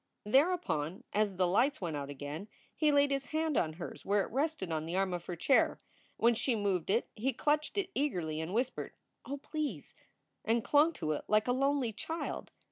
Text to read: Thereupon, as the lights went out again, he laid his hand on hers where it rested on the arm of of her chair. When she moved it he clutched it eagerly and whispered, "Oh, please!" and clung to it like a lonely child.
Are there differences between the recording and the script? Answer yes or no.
yes